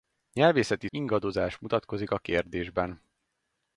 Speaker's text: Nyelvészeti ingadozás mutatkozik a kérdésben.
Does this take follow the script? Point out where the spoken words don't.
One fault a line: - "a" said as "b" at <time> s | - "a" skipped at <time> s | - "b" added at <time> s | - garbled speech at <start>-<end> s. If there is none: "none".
none